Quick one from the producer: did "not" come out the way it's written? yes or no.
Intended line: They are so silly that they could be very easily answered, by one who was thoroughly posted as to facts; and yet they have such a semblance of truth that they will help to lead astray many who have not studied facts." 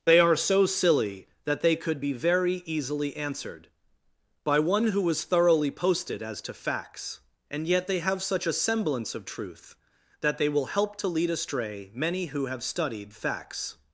no